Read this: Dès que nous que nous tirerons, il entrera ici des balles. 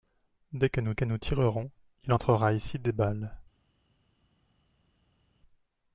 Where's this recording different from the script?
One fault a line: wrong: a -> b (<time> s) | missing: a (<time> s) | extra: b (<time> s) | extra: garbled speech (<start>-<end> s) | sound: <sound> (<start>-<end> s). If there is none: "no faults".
no faults